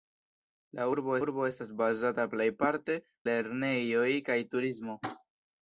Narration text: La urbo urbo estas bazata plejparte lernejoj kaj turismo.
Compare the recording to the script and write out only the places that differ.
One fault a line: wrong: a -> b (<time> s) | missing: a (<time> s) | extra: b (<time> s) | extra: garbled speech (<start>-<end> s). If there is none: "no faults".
no faults